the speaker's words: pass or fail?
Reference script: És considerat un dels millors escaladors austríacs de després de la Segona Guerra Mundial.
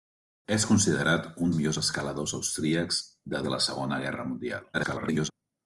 fail